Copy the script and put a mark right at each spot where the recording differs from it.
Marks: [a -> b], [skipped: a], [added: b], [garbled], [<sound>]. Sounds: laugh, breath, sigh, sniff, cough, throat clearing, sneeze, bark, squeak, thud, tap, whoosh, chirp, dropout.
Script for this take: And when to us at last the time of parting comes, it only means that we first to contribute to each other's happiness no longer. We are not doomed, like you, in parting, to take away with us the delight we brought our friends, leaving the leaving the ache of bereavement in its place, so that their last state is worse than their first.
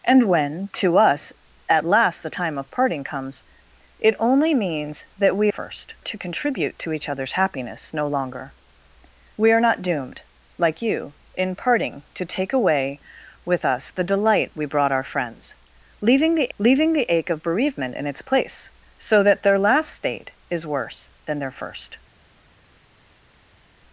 And when to us at last the time of parting comes, it only means that we first to contribute to each other's happiness no longer. We are not doomed, like you, in parting, to take away with us the delight we brought our friends, leaving the leaving the ache of bereavement in its place, so that their last state is worse than their first.